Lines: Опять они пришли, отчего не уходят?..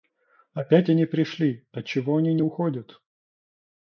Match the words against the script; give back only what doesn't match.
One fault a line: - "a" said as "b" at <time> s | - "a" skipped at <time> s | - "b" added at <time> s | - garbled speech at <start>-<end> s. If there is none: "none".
- "они" added at 2.2 s